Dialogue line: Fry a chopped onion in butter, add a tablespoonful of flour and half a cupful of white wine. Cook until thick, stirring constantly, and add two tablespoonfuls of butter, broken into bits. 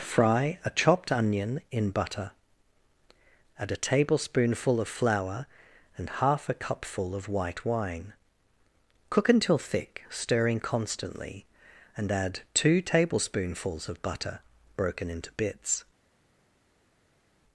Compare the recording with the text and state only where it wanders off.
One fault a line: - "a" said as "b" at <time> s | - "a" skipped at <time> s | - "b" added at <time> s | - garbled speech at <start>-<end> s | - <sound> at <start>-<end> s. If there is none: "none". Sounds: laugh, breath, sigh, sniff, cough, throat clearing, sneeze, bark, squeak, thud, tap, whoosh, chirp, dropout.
none